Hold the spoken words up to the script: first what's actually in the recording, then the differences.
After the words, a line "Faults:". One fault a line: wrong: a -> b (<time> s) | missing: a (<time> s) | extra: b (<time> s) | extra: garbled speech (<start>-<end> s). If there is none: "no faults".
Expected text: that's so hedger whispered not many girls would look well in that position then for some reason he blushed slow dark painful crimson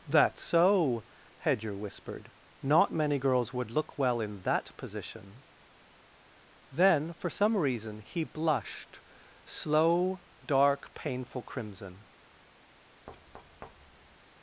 that's so hedger whispered not many girls would look well in that position then for some reason he blushed slow dark painful crimson
Faults:
no faults